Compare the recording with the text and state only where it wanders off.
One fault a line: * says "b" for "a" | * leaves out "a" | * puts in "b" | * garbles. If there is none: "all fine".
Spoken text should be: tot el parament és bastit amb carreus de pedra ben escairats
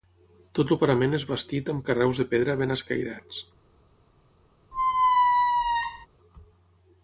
all fine